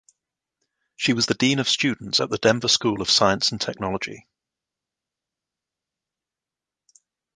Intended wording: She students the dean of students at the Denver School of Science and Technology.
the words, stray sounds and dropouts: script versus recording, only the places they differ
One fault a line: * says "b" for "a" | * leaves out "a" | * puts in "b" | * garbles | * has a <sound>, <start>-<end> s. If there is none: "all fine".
* says "was" for "students"